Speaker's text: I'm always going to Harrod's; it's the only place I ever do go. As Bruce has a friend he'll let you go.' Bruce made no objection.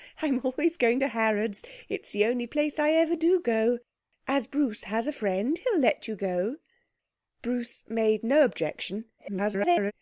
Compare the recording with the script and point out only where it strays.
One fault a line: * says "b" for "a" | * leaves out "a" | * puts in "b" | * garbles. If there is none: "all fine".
* garbles